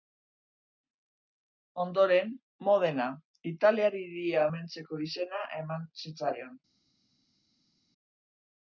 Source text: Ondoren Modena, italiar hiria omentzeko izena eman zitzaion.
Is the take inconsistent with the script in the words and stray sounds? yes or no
no